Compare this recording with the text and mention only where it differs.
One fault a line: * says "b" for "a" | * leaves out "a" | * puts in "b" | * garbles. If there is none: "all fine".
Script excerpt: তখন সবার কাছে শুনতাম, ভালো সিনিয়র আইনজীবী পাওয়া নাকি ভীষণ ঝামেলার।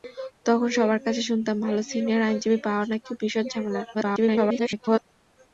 * garbles